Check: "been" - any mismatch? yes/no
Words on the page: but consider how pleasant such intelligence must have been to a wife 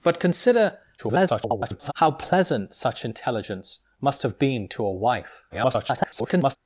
no